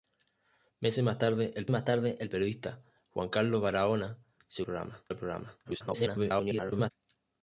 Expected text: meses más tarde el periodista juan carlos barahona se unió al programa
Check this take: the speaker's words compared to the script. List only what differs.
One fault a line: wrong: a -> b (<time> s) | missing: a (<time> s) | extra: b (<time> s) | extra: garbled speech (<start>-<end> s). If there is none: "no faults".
extra: más tarde el (1.7 s)
wrong: unió -> programa (4.6 s)
extra: garbled speech (5.6-6.9 s)